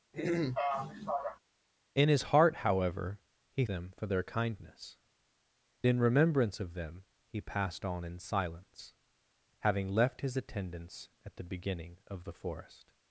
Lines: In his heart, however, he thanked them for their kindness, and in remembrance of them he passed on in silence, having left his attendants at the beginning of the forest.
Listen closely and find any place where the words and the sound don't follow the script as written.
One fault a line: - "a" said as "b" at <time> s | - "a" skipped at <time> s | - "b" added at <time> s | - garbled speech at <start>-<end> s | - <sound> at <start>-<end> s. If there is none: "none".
- throat clearing at 0.1-1.4 s
- "thanked" skipped at 3.6 s
- "and" skipped at 5.0 s